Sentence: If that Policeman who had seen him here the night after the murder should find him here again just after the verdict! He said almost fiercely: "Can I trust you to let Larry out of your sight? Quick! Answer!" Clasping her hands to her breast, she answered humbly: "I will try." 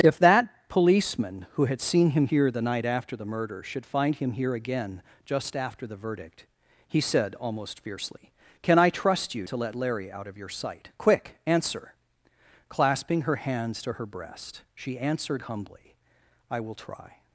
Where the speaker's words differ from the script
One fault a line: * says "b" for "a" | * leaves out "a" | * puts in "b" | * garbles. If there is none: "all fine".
all fine